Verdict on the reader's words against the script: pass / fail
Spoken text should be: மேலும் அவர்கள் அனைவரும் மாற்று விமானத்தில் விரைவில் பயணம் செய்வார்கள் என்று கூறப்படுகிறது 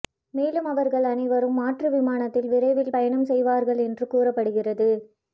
pass